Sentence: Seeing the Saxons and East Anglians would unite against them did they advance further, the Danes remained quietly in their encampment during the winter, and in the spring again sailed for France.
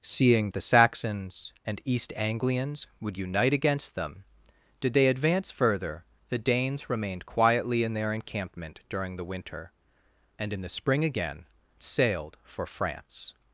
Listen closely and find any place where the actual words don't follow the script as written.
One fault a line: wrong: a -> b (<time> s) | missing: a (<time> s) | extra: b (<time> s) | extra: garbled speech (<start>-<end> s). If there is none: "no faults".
no faults